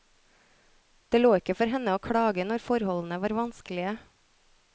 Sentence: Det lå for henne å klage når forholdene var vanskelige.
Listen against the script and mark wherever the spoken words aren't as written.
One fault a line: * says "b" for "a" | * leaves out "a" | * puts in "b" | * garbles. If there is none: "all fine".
* puts in "ikke"